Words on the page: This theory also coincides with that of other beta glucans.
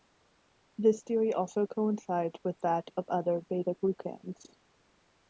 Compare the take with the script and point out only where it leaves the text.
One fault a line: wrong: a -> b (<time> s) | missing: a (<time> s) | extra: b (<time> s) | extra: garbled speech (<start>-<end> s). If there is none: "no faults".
no faults